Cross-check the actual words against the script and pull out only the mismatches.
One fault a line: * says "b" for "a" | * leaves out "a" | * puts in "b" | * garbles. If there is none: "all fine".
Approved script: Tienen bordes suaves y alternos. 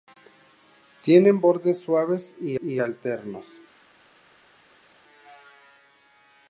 * puts in "y"